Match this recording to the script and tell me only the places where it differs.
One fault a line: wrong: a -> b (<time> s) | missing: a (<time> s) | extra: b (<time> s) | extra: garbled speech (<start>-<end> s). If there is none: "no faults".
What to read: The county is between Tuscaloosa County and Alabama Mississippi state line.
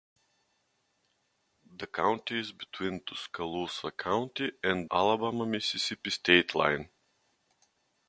no faults